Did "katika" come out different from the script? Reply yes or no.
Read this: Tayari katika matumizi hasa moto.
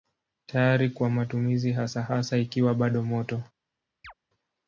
yes